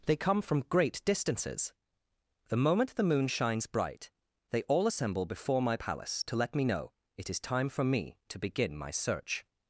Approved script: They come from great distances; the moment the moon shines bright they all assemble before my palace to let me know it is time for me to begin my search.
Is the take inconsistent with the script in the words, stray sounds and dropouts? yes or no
no